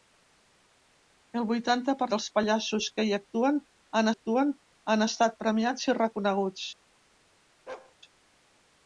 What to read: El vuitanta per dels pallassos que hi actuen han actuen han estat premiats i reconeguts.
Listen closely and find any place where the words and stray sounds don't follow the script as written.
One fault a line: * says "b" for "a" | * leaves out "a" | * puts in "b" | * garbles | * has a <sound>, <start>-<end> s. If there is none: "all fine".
* has a bark, 7.7-8.0 s